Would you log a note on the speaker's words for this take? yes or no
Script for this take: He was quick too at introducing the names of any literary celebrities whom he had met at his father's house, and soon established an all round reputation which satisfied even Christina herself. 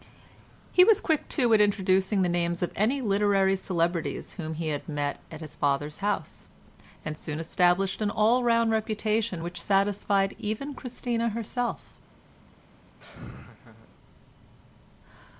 no